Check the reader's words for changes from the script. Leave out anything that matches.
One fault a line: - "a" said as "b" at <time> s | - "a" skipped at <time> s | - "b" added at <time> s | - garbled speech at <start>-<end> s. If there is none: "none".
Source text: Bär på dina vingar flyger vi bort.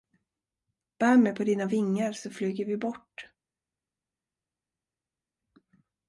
- "mig" added at 1.2 s
- "så" added at 2.1 s